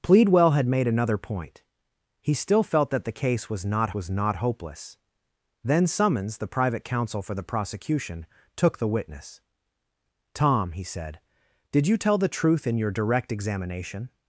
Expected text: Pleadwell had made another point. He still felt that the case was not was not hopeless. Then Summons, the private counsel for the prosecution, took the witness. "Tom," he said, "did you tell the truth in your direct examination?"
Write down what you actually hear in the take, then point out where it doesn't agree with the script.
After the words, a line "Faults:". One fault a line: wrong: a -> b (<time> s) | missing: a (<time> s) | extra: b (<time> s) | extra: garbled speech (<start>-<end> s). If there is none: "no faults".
Pleadwell had made another point. He still felt that the case was not was not hopeless. Then Summons, the private counsel for the prosecution, took the witness. "Tom," he said, "did you tell the truth in your direct examination?"
Faults:
no faults